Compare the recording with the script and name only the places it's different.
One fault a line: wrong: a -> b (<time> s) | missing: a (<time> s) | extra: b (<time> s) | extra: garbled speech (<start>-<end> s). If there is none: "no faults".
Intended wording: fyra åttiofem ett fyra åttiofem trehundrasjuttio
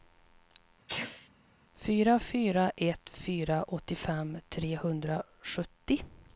wrong: åttiofem -> fyra (2.2 s)